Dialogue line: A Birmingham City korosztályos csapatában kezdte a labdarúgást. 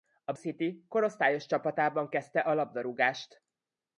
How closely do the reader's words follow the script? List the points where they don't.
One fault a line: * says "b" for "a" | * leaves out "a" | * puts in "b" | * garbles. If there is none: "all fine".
* leaves out "Birmingham"